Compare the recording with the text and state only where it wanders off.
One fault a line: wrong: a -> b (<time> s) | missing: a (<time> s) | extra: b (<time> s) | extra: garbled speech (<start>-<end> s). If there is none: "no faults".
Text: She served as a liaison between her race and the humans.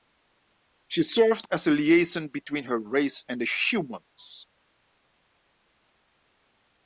no faults